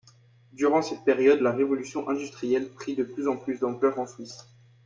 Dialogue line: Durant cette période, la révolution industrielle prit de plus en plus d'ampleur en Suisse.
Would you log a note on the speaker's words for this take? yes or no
no